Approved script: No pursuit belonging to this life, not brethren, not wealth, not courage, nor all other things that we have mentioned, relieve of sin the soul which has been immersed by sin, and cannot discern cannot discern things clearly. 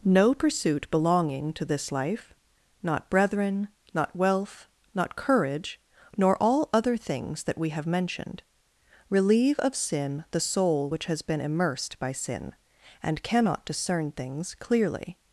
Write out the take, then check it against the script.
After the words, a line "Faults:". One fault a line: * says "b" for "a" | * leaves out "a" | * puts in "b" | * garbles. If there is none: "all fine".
No pursuit belonging to this life, not brethren, not wealth, not courage, nor all other things that we have mentioned, relieve of sin the soul which has been immersed by sin, and cannot discern things clearly.
Faults:
* leaves out "cannot discern"